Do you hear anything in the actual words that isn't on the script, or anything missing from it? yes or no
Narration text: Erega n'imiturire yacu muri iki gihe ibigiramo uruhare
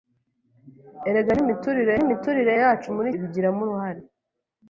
yes